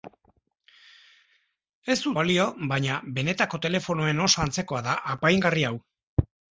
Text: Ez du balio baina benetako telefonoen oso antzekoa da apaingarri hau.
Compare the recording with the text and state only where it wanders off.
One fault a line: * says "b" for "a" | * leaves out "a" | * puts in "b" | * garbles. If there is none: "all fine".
all fine